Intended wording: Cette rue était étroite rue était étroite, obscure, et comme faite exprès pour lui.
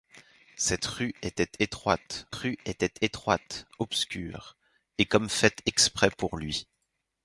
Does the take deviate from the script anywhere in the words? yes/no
no